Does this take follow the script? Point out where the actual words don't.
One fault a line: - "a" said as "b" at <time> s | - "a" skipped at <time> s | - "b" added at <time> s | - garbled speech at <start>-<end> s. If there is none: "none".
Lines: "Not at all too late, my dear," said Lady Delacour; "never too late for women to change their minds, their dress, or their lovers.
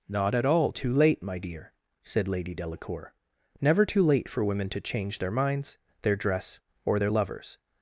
none